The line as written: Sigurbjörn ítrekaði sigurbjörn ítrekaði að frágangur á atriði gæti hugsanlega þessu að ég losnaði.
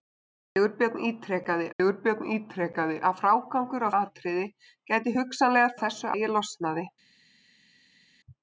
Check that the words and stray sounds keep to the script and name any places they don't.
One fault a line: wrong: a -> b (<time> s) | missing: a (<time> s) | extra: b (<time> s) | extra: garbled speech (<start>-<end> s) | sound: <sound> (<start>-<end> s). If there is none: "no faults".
no faults